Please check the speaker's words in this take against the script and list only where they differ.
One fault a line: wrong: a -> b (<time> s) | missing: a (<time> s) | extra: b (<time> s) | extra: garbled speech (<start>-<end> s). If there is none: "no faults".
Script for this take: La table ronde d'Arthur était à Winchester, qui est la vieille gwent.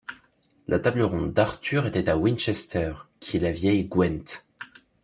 no faults